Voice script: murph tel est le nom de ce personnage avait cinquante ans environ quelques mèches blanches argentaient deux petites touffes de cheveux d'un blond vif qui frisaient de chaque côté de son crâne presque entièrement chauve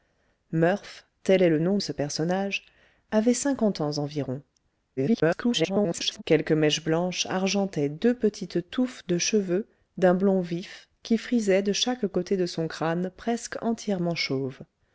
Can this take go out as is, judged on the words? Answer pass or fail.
fail